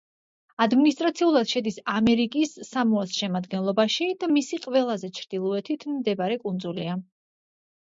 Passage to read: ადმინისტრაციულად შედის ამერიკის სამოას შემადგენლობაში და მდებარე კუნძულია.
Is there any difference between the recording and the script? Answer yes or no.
yes